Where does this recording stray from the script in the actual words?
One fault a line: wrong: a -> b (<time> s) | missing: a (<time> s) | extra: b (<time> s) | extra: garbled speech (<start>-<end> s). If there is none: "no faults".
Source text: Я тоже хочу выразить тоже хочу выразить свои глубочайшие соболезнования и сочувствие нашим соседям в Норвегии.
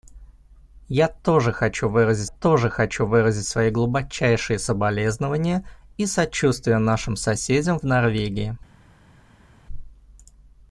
no faults